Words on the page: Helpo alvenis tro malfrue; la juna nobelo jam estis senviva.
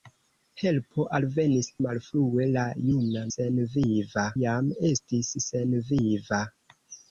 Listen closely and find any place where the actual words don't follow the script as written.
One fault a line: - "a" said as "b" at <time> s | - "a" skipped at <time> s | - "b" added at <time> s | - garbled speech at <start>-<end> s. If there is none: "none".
- "tro" skipped at 1.7 s
- "nobelo" said as "senviva" at 3.3 s